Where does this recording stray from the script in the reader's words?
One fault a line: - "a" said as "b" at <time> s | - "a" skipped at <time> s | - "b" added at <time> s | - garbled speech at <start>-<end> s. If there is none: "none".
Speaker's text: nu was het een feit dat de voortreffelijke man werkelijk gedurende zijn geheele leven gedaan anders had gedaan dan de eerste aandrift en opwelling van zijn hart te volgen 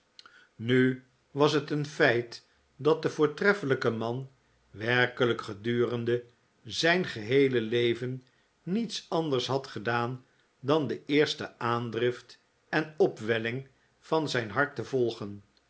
- "gedaan" said as "niets" at 8.6 s